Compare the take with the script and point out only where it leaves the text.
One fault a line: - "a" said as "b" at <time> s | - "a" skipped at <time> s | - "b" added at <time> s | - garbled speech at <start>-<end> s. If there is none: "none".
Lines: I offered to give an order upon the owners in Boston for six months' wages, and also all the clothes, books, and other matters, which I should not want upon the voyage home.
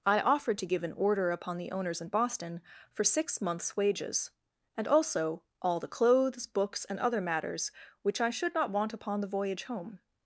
none